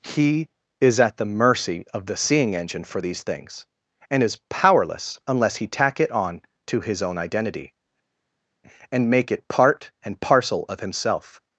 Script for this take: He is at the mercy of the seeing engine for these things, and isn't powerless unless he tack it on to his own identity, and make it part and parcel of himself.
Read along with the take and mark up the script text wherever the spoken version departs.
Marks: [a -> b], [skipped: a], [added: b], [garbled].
He is at the mercy of the seeing engine for these things, and [isn't -> is] powerless unless he tack it on to his own identity, and make it part and parcel of himself.